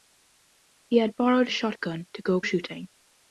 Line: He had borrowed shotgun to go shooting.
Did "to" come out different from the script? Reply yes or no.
no